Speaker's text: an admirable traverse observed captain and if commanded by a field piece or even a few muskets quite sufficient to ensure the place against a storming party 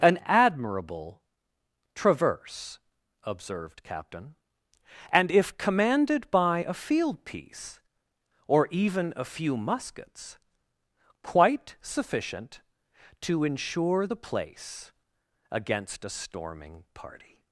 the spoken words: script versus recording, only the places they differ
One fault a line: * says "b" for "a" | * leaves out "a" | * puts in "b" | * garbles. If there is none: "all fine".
all fine